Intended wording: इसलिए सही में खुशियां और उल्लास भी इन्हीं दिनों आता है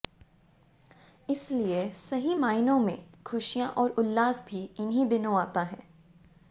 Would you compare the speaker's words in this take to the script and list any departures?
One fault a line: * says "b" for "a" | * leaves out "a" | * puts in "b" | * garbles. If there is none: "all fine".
* puts in "मायनों"